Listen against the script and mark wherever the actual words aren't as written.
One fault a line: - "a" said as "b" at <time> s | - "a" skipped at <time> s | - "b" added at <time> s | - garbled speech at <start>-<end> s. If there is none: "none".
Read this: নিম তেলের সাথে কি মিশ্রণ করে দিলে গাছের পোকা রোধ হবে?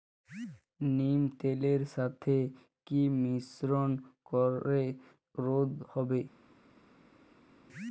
- "দিলে গাছের পোকা" skipped at 4.8 s